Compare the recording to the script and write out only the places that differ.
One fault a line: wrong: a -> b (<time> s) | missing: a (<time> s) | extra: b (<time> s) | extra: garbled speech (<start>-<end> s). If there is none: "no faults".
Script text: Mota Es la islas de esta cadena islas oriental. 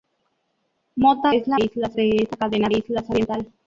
no faults